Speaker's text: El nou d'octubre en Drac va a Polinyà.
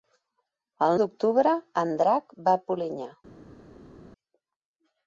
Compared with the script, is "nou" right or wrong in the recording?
wrong